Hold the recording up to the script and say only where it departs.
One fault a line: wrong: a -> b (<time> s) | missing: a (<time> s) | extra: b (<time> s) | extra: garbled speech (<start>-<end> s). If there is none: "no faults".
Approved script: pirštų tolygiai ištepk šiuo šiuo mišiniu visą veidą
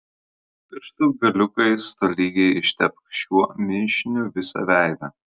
extra: galiukais (1.2 s)
missing: šiuo (3.4 s)